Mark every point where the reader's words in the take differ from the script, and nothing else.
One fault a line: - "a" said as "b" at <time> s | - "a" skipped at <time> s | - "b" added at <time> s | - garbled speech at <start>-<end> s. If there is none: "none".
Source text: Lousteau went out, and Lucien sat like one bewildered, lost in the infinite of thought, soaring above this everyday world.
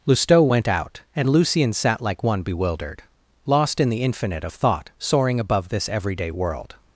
none